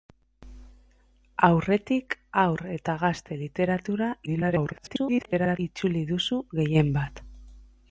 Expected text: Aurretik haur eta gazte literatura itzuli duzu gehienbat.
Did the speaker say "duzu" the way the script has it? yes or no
yes